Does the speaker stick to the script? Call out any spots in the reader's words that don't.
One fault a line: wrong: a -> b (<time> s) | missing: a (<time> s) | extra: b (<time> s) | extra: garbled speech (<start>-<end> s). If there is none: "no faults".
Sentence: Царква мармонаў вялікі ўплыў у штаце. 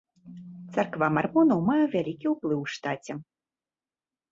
extra: мае (1.7 s)